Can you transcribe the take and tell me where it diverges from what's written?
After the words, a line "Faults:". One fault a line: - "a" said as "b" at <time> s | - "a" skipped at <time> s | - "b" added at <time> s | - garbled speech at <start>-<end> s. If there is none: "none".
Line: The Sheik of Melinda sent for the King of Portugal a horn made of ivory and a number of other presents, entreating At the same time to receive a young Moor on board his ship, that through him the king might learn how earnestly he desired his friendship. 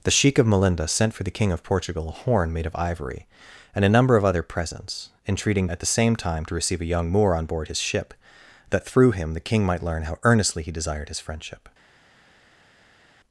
The Sheik of Melinda sent for the King of Portugal a horn made of ivory and a number of other presents, entreating At the same time to receive a young Moor on board his ship, that through him the king might learn how earnestly he desired his friendship.
Faults:
none